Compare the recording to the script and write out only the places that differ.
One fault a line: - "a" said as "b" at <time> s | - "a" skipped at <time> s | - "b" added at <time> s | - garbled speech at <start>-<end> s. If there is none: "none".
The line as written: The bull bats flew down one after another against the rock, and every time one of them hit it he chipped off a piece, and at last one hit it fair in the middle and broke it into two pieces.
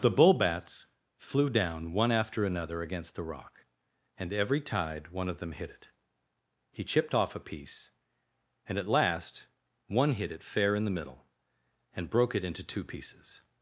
- "time" said as "tide" at 4.6 s